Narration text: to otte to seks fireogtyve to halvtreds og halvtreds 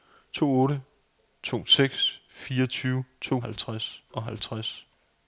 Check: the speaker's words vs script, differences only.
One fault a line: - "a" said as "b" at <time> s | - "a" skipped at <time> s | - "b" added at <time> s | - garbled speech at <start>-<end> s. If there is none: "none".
none